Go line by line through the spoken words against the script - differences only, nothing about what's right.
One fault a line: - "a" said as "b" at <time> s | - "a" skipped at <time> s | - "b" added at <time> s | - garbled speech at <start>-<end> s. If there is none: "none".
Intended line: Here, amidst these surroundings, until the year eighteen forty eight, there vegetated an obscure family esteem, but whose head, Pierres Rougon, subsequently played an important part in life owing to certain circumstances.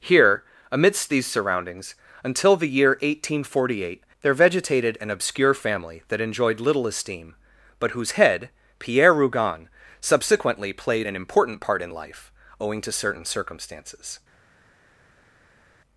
- "that enjoyed little" added at 6.1 s
- "Pierres" said as "Pierre" at 8.8 s